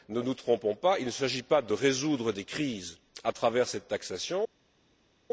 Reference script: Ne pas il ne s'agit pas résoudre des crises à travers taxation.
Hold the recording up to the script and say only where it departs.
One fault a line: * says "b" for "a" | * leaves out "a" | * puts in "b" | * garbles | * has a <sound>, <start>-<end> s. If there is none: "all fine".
* puts in "nous trompons"
* puts in "de"
* puts in "cette"